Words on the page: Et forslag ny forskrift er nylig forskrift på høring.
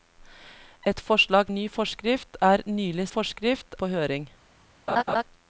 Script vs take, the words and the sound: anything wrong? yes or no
yes